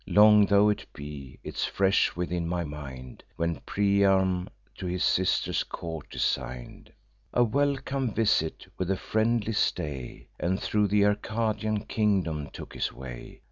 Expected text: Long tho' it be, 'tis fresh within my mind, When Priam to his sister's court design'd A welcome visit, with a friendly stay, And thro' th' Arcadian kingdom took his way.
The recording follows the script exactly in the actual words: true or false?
true